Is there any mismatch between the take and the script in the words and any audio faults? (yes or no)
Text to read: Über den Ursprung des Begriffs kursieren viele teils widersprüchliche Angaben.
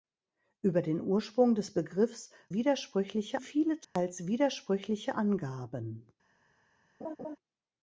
yes